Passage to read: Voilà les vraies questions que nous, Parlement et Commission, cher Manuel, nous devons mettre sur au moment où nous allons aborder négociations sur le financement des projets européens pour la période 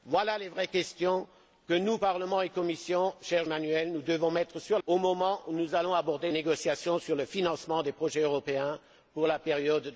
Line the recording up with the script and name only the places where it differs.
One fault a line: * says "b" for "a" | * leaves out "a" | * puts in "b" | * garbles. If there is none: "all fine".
all fine